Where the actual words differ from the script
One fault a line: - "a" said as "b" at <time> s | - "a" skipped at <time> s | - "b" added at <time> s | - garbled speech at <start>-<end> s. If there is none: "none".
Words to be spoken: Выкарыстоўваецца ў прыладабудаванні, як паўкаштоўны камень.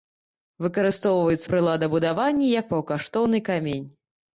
- "ў" skipped at 1.4 s